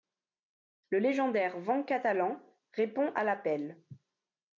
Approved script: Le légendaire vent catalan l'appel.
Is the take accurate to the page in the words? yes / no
no